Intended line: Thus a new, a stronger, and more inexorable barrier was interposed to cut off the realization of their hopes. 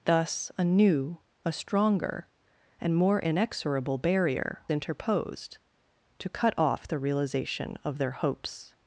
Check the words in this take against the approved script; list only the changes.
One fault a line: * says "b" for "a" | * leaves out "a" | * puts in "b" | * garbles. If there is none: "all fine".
* leaves out "was"